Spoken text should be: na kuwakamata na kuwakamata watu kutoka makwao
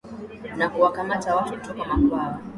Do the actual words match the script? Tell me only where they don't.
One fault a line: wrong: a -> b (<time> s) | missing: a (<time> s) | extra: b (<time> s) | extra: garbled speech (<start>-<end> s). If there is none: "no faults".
missing: na kuwakamata (1.4 s)